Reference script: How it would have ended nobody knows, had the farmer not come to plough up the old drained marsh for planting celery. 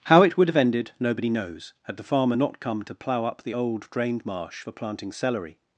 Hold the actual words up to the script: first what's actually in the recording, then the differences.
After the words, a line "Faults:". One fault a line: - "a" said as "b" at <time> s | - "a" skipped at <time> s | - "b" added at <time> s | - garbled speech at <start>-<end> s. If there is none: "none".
How it would have ended nobody knows, had the farmer not come to plough up the old drained marsh for planting celery.
Faults:
none